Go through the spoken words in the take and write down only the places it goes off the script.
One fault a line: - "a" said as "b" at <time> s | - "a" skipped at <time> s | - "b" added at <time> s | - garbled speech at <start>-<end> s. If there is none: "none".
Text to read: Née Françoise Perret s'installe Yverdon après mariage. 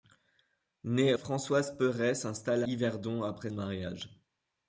none